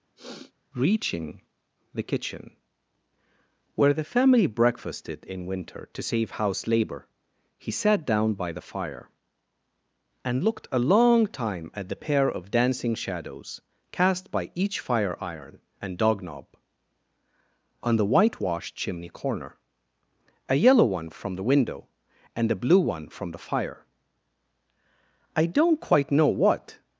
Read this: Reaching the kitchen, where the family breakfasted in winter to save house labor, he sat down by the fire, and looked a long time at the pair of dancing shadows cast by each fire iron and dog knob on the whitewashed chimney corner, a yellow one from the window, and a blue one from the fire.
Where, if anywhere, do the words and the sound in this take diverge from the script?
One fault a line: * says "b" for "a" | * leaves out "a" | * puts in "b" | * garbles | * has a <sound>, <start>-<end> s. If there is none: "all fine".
* has a sniff, 0.2-0.5 s
* puts in "I don't quite know what"